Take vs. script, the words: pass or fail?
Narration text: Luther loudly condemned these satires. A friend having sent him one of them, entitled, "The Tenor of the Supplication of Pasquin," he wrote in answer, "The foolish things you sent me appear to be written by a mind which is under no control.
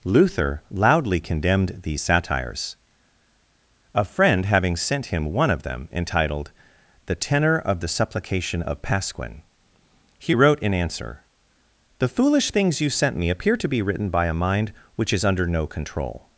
pass